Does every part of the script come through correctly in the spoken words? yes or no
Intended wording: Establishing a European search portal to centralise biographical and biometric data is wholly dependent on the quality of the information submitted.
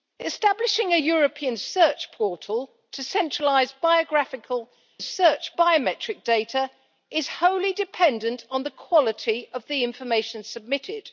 no